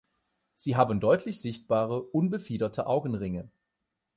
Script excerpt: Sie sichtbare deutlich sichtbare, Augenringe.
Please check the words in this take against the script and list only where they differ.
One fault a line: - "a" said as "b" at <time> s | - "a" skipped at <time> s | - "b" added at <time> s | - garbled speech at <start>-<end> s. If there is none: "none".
- "sichtbare" said as "haben" at 0.8 s
- "unbefiederte" added at 2.0 s